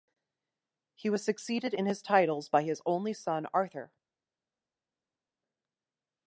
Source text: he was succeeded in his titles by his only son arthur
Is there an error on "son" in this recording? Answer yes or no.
no